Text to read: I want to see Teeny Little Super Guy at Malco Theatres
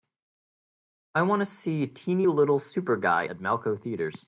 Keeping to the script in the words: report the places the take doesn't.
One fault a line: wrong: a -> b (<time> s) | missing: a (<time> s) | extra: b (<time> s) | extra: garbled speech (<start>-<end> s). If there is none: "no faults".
no faults